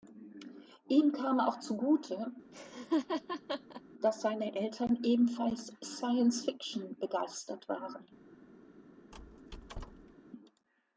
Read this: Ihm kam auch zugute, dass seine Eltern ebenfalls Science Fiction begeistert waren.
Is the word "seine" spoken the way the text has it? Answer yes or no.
yes